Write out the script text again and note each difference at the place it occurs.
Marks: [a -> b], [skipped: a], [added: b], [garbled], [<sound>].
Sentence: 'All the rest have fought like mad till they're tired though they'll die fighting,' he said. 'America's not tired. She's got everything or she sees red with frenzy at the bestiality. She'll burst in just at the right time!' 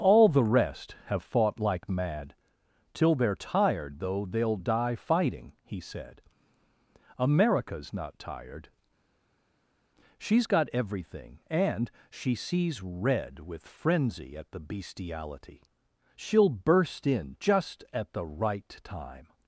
'All the rest have fought like mad till they're tired though they'll die fighting,' he said. 'America's not tired. She's got everything [or -> and] she sees red with frenzy at the bestiality. She'll burst in just at the right time!'